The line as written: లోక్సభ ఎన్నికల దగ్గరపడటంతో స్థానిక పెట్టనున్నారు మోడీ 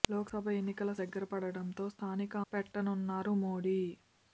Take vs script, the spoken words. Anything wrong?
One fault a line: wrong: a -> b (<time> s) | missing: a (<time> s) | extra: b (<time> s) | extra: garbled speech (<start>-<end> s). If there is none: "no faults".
no faults